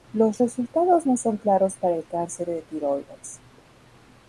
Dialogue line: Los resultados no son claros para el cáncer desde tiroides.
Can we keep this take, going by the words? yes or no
no